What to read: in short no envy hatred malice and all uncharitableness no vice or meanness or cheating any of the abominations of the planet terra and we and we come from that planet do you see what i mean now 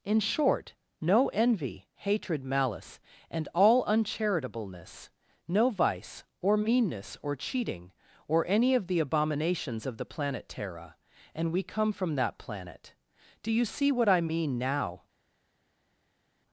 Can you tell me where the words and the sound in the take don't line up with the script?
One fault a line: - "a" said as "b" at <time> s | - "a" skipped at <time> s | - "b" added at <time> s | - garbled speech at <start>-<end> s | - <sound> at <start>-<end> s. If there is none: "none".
- "or" added at 8.3 s
- "and we" skipped at 11.6 s